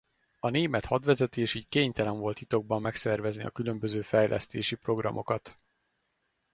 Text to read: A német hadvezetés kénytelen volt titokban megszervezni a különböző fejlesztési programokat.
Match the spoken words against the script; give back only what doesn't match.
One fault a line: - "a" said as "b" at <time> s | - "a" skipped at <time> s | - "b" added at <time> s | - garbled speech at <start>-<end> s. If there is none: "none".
- "így" added at 1.5 s